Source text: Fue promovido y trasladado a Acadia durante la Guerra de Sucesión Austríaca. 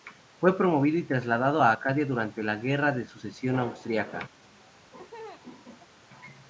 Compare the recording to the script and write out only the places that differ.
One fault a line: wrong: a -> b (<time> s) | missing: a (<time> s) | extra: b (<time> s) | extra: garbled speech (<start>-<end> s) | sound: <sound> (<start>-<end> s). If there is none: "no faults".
sound: laugh (4.4-6.0 s)